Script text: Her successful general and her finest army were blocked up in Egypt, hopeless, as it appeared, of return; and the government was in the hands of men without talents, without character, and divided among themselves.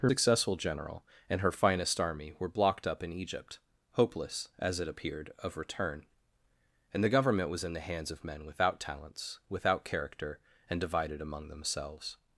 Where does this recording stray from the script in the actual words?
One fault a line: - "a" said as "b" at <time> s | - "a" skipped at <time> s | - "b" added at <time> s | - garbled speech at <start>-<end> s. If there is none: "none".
none